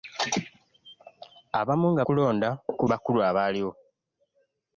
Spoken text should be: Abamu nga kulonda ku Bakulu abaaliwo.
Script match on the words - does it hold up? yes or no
yes